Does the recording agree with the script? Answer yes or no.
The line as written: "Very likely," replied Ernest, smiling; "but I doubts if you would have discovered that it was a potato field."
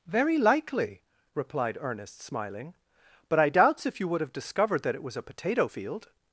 yes